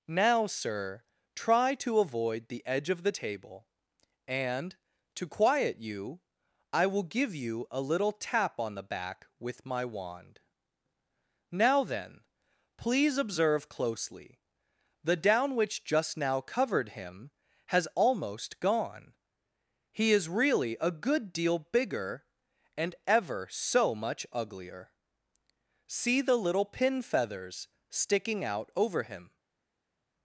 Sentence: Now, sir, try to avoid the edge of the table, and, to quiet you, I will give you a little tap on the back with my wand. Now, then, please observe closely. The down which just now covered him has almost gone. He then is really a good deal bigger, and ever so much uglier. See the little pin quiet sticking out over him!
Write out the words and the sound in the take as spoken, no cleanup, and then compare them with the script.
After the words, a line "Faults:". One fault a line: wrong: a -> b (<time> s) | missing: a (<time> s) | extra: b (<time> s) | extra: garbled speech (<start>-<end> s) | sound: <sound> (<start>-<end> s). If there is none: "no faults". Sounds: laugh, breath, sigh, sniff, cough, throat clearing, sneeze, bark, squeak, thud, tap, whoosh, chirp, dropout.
Now, sir, try to avoid the edge of the table, and, to quiet you, I will give you a little tap on the back with my wand. Now, then, please observe closely. The down which just now covered him has almost gone. He is really a good deal bigger, and ever so much uglier. See the little pin feathers sticking out over him!
Faults:
missing: then (20.1 s)
wrong: quiet -> feathers (27.0 s)